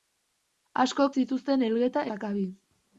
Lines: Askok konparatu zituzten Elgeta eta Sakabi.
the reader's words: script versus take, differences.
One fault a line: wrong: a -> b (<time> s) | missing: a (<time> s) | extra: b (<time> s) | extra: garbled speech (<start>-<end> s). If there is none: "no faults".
missing: konparatu (1.1 s)
missing: eta (2.1 s)